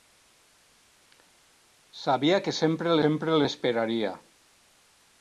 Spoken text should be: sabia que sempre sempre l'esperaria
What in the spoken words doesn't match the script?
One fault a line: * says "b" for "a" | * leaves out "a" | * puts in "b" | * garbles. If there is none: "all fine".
all fine